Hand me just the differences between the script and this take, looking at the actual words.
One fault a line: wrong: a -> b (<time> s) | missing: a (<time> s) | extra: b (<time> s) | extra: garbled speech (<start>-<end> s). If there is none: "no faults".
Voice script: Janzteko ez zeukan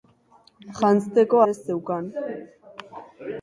no faults